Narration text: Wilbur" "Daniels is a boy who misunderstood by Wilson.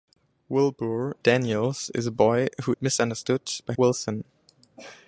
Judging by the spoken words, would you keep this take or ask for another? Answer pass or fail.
pass